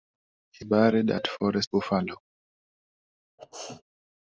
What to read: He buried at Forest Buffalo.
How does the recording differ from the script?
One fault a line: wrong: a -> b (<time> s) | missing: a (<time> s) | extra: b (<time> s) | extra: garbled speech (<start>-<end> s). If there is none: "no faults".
no faults